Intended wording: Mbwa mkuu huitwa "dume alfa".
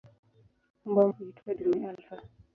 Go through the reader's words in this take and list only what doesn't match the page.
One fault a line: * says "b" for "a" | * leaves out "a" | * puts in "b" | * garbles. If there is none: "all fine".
* leaves out "mkuu"